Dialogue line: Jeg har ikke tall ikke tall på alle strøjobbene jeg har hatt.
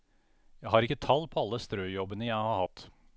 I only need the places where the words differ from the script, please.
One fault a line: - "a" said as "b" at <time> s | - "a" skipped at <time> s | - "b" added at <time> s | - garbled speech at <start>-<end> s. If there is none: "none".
- "ikke tall" skipped at 1.3 s